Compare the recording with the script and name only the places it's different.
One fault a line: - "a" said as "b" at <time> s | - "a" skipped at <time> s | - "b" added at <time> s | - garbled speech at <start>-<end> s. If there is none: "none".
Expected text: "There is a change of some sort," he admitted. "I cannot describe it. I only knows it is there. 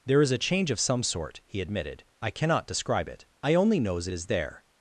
none